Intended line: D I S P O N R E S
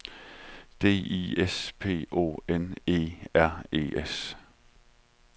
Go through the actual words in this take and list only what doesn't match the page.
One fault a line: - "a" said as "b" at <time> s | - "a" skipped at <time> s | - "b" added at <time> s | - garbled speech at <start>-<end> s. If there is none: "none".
- "E" added at 2.9 s